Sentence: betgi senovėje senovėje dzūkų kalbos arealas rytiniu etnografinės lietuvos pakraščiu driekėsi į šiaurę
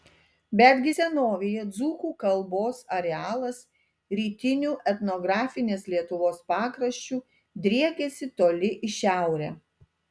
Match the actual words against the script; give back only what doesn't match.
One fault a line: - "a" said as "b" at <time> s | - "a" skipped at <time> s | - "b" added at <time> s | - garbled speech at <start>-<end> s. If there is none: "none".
- "senovėje" skipped at 1.6 s
- "toli" added at 8.4 s